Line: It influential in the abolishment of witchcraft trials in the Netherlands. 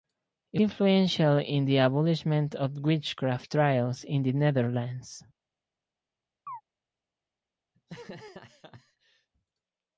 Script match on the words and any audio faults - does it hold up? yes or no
no